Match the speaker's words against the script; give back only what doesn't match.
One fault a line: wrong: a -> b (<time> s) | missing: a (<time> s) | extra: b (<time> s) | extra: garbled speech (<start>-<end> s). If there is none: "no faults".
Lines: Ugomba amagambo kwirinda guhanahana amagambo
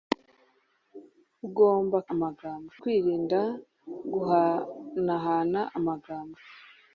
no faults